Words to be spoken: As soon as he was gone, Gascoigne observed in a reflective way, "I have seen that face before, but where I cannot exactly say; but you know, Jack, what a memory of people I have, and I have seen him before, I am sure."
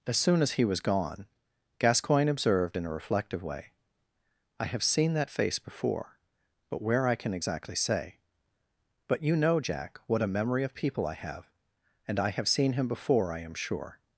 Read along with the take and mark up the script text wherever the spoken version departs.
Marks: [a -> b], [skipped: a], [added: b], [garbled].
As soon as he was gone, Gascoigne observed in a reflective way, "I have seen that face before, but where I [cannot -> can] exactly say; but you know, Jack, what a memory of people I have, and I have seen him before, I am sure."